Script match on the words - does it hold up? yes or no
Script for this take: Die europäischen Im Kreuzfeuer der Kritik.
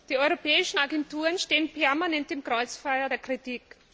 no